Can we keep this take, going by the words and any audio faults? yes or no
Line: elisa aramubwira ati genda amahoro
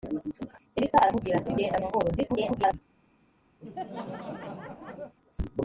no